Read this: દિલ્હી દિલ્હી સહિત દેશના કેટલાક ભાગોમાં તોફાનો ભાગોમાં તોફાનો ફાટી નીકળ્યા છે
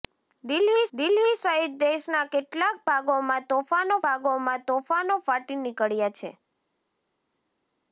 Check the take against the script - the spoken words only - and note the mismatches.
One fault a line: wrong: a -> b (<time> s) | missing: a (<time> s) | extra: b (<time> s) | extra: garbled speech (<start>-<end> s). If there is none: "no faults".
no faults